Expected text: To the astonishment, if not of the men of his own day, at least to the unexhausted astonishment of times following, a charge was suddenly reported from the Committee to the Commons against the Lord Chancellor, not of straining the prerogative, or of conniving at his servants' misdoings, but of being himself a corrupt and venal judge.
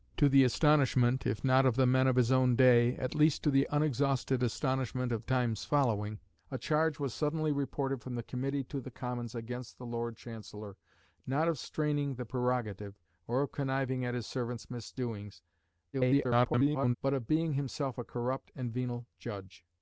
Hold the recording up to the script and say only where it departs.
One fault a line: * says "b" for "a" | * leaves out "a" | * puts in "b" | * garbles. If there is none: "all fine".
* garbles